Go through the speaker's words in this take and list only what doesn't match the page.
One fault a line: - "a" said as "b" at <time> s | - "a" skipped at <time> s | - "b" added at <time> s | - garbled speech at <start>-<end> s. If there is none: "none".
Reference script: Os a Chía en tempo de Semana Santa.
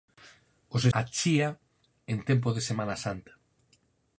none